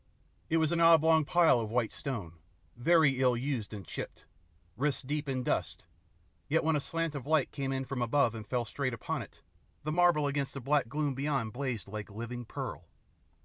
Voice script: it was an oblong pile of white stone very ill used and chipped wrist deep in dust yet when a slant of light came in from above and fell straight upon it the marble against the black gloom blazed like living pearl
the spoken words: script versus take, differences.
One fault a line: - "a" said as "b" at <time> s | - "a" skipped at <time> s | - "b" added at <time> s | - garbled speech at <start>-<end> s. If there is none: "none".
- "beyond" added at 11.1 s